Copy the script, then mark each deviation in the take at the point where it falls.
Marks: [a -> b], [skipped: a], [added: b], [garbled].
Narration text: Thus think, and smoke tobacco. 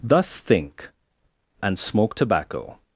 Thus think, and smoke tobacco.